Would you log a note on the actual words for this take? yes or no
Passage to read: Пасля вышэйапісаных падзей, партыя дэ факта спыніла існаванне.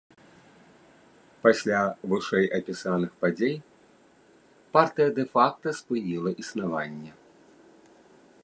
no